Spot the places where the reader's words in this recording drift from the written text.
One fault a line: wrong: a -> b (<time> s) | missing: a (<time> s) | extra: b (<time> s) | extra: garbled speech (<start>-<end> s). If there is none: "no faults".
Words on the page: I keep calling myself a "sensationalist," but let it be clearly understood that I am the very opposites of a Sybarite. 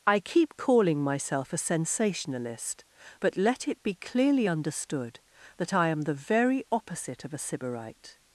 wrong: opposites -> opposite (6.7 s)